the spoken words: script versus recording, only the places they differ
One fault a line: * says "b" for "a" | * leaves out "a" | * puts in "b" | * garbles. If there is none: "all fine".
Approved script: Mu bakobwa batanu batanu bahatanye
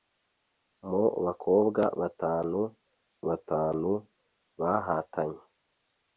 all fine